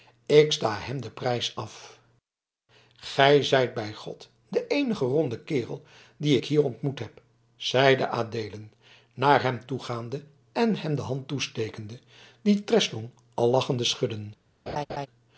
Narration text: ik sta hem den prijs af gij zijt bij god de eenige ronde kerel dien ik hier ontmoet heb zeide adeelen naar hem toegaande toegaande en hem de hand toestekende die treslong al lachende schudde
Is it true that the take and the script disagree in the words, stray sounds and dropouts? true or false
true